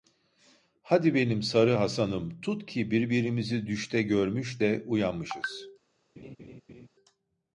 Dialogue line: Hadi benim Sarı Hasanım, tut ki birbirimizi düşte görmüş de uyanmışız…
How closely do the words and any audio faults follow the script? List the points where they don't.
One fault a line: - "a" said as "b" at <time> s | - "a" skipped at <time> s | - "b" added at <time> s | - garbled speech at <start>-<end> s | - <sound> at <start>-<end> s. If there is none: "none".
- laugh at 6.2-6.9 s